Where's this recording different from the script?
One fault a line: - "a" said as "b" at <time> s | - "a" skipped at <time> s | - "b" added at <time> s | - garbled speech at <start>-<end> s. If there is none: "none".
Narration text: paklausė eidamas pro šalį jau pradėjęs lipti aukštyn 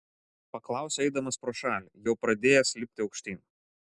none